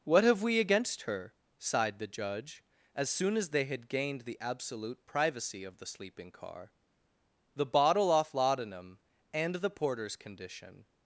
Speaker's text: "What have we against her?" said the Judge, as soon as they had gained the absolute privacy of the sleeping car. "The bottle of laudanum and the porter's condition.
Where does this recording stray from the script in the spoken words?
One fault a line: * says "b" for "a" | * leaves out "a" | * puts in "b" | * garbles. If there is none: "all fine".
* says "sighed" for "said"
* says "off" for "of"